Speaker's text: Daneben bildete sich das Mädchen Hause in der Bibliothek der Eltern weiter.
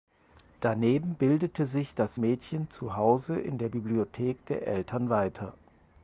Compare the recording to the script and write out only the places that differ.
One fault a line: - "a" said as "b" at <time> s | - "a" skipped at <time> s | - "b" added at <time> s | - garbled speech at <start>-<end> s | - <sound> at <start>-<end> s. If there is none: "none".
- "zu" added at 2.7 s